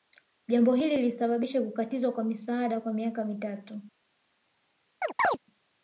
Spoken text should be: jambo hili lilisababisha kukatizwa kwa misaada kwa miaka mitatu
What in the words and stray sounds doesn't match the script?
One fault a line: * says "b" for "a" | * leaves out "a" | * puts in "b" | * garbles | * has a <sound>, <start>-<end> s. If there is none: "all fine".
* has a chirp, 5.0-5.4 s